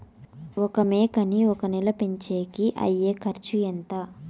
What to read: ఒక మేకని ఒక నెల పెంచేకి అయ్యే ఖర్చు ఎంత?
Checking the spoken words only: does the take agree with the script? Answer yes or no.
yes